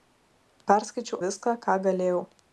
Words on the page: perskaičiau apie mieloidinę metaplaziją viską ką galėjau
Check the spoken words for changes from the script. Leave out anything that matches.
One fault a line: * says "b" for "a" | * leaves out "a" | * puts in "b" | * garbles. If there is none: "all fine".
* leaves out "apie mieloidinę metaplaziją"